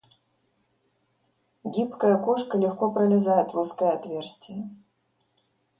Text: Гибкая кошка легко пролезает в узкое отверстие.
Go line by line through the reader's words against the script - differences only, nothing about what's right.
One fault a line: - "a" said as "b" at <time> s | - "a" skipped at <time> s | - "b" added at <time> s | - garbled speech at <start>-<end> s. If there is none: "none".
none